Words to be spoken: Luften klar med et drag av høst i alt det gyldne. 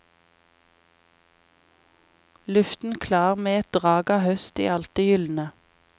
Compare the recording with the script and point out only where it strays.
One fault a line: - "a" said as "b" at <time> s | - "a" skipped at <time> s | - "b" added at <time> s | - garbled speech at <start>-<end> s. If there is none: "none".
none